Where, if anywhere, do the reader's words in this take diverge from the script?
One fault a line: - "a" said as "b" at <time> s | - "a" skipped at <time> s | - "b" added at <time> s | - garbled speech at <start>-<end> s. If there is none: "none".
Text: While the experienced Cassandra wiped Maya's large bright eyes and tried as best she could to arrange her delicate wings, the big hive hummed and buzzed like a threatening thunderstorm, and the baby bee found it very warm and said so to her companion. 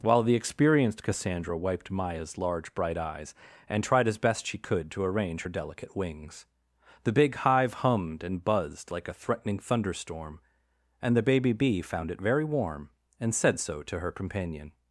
none